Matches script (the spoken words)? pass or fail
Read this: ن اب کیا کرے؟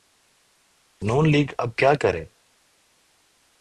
fail